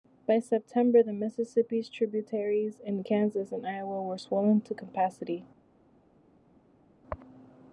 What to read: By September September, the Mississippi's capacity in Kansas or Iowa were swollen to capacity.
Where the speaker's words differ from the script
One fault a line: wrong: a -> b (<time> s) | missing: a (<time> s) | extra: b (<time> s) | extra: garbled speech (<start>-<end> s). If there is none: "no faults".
missing: September (1.0 s)
wrong: capacity -> tributaries (1.9 s)
wrong: or -> and (3.5 s)